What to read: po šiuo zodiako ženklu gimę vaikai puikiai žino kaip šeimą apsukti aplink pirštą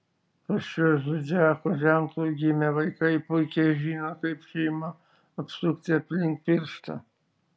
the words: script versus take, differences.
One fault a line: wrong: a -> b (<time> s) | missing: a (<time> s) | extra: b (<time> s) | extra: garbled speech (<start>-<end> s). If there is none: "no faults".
no faults